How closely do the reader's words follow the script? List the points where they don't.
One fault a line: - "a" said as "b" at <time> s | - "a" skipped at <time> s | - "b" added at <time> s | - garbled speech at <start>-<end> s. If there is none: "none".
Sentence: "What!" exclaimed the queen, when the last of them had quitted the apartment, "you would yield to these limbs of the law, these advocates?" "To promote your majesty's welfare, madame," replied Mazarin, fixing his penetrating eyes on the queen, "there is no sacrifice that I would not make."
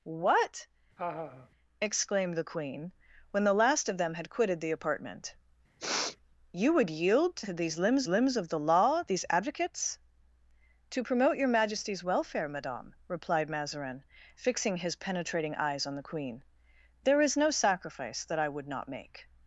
- "limbs" added at 8.1 s